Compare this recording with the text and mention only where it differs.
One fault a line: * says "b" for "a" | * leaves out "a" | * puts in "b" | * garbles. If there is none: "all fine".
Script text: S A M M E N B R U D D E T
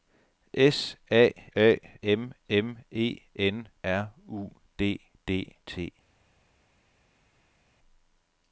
* puts in "A"
* leaves out "B"
* leaves out "E"